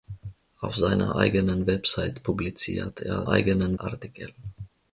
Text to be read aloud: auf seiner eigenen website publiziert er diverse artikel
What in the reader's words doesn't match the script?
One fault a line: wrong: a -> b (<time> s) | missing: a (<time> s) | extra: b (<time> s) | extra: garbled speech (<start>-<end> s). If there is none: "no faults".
wrong: diverse -> eigenen (3.3 s)